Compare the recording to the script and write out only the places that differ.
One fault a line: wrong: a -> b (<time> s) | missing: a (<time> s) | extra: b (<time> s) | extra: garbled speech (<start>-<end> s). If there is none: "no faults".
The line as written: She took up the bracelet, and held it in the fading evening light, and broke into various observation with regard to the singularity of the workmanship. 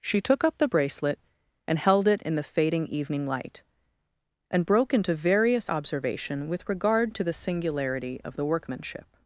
no faults